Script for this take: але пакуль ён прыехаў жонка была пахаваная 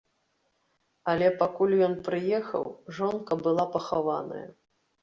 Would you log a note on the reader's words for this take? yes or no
no